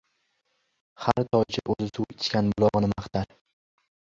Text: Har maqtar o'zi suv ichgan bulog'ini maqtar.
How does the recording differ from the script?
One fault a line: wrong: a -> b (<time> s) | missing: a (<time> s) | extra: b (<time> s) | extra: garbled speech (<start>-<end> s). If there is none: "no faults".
wrong: maqtar -> toycha (1.4 s)